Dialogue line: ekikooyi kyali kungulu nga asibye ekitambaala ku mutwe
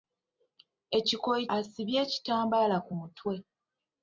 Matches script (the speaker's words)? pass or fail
fail